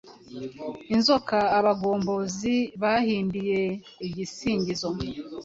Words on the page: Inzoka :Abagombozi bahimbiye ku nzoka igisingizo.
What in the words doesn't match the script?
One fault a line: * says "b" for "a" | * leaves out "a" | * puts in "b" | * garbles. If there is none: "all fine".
* leaves out "ku nzoka"